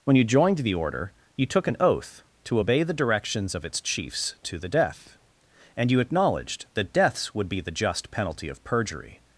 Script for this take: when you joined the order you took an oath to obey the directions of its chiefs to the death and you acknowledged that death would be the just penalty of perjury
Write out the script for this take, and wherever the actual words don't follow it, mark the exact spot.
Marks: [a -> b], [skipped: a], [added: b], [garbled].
when you joined the order you took an oath to obey the directions of its chiefs to the death and you acknowledged that [death -> deaths] would be the just penalty of perjury